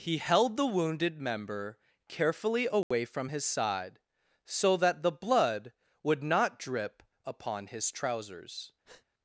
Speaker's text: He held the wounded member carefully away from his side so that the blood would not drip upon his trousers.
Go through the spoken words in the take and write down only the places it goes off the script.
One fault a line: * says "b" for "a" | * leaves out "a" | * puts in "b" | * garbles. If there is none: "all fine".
all fine